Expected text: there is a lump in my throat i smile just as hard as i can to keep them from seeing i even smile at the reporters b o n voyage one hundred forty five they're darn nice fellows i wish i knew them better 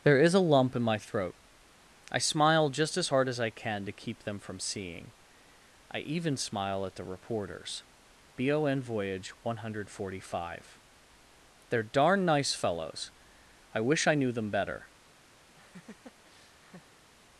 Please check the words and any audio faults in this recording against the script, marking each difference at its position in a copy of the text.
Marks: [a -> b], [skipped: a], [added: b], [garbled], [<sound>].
there is a lump in my throat i smile just as hard as i can to keep them from seeing i even smile at the reporters b o n voyage one hundred forty five they're darn nice fellows i wish i knew them better [laugh]